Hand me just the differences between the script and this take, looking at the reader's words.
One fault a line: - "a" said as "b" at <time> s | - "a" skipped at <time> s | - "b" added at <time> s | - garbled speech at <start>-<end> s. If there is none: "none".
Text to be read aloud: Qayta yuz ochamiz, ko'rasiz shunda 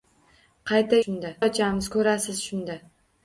- "yuz" said as "shunda" at 1.0 s